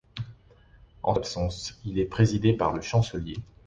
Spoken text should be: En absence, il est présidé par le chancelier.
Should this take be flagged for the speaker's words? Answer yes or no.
no